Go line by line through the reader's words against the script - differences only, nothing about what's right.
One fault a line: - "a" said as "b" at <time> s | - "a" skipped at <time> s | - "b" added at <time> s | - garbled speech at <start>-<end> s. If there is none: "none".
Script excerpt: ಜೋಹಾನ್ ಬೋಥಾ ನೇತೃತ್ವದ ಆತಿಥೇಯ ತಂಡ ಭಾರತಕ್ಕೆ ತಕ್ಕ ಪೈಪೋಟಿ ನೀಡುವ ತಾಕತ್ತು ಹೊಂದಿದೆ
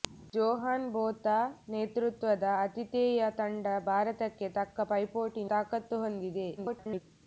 - "ನೀಡುವ" skipped at 5.4 s
- garbled speech at 6.6-7.0 s